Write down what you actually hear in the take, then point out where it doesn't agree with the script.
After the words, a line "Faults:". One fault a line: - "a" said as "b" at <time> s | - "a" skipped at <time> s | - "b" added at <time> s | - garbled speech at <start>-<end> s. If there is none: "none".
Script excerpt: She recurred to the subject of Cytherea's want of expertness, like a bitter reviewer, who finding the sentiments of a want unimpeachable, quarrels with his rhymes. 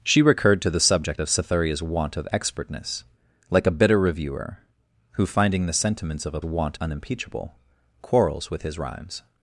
She recurred to the subject of Cytherea's want of expertness, like a bitter reviewer, who finding the sentiments of a want unimpeachable, quarrels with his rhymes.
Faults:
none